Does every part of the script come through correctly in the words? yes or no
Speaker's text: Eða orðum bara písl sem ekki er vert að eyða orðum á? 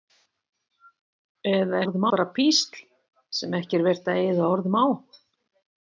yes